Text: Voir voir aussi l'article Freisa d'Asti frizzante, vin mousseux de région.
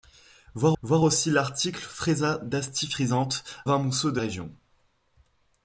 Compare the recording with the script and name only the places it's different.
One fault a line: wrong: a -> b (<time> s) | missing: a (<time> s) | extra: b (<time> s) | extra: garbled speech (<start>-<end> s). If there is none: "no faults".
no faults